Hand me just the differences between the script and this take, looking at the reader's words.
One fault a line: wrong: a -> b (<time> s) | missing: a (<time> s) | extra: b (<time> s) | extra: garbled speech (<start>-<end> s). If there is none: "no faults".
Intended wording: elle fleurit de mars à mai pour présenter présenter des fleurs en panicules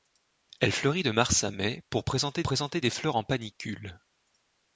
no faults